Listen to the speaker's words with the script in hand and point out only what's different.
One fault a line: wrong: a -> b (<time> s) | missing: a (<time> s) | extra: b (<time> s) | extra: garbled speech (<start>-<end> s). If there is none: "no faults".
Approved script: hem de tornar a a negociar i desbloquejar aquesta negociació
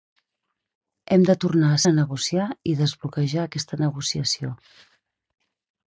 no faults